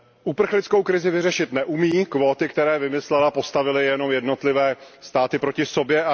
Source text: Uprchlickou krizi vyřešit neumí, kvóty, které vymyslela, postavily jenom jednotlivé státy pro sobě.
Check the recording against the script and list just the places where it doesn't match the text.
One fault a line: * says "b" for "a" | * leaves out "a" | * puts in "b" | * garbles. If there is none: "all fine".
* says "proti" for "pro"